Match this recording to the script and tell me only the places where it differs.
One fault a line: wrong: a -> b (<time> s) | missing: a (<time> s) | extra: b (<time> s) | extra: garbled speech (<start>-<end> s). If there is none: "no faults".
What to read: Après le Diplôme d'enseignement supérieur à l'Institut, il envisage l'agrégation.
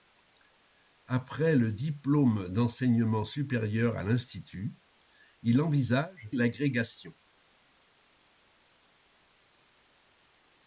no faults